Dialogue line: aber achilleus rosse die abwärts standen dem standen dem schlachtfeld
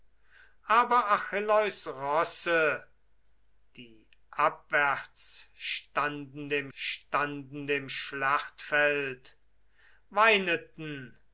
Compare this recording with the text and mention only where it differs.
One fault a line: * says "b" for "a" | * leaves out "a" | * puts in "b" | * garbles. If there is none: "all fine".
all fine